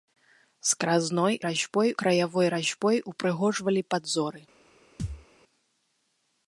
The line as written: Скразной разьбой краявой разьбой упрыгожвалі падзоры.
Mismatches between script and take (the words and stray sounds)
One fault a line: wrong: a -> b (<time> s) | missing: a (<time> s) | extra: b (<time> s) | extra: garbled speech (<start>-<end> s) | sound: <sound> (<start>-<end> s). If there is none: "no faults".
sound: thud (5.0-5.3 s)